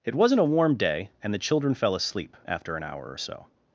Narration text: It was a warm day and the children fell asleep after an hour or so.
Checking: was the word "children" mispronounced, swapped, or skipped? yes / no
no